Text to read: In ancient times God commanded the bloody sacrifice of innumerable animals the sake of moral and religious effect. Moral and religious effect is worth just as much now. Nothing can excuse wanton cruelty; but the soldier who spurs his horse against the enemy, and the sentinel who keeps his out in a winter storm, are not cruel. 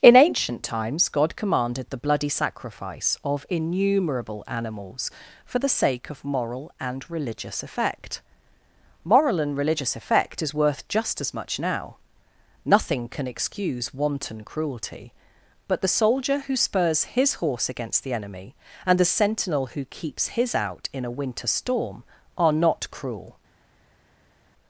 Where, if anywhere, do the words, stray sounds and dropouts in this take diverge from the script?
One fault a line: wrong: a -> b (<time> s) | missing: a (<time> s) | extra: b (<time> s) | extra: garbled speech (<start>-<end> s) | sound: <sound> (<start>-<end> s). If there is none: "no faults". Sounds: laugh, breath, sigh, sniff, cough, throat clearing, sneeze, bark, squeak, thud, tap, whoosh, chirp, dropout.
extra: for (5.5 s)